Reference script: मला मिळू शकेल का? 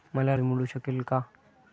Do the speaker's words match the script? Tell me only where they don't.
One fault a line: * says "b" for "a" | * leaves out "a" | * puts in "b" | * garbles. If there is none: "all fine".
all fine